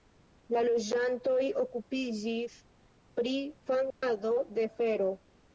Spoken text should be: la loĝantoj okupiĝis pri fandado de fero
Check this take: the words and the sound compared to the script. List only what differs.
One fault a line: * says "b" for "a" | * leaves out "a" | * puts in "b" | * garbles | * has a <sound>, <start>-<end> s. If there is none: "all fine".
* has a dropout, 3.9-4.0 s